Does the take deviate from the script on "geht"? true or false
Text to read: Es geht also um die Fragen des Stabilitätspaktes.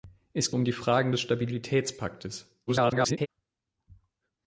true